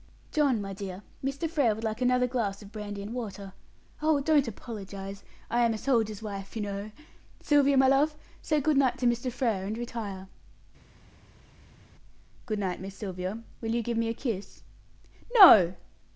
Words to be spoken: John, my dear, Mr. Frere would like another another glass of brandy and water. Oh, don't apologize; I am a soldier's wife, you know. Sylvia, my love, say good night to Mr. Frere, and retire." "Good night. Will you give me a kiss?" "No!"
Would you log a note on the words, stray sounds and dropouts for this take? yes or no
yes